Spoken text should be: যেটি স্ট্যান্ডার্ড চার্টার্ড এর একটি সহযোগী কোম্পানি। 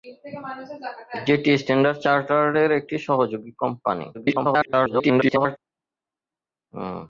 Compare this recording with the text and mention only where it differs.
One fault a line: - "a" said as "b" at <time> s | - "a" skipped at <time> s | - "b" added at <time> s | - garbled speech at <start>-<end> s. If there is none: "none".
- garbled speech at 4.1-5.6 s